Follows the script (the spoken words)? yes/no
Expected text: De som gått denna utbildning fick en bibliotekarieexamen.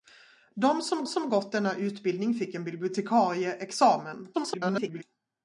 no